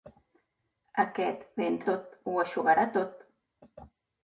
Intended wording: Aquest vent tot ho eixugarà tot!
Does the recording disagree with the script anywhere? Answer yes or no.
no